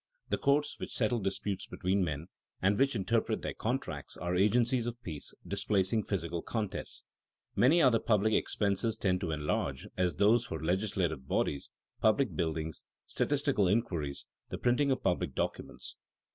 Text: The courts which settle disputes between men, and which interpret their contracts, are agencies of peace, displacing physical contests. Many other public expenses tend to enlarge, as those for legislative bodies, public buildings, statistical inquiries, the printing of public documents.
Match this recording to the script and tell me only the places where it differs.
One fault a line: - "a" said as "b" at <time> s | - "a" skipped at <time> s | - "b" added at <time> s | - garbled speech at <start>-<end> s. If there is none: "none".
none